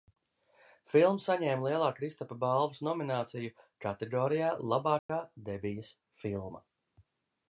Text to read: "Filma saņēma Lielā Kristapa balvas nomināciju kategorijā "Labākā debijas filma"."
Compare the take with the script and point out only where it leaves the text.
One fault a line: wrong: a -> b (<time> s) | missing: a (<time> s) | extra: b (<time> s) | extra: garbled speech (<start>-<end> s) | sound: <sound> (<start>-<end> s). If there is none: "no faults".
sound: dropout (5.0-5.1 s)